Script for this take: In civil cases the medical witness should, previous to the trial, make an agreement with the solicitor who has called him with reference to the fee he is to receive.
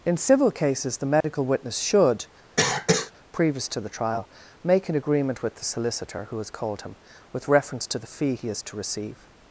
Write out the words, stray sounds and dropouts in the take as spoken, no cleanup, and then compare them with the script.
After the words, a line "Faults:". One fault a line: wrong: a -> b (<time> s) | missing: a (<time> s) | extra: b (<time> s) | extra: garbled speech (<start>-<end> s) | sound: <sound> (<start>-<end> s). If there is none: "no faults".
In civil cases the medical witness should, previous to the trial, make an agreement with the solicitor who has called him with reference to the fee he is to receive.
Faults:
sound: dropout (1.2-1.2 s)
sound: cough (2.6-3.1 s)